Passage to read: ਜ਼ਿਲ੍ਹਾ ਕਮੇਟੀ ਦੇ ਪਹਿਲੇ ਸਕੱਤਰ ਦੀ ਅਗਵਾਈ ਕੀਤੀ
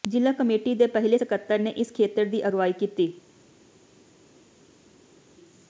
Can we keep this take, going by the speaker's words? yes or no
no